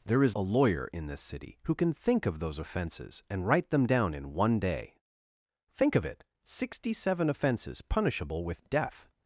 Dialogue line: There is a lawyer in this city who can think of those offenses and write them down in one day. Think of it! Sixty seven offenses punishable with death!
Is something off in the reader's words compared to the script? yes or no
no